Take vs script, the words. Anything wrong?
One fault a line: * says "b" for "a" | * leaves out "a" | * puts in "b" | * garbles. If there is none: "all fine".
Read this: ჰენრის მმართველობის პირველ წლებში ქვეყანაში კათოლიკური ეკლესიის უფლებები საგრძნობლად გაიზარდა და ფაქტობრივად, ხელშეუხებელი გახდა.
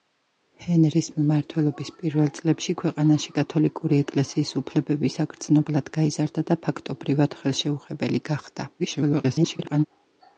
* garbles